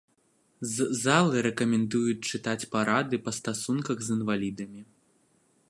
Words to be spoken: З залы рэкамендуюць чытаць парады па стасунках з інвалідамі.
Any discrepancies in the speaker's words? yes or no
no